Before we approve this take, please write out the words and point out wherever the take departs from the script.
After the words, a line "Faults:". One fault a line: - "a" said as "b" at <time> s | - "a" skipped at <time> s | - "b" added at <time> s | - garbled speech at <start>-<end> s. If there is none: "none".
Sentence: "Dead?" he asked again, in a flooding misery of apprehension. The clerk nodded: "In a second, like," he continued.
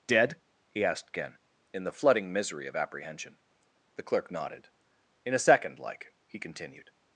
"Dead?" he asked again, in the flooding misery of apprehension. The clerk nodded: "In a second, like," he continued.
Faults:
- "a" said as "the" at 1.8 s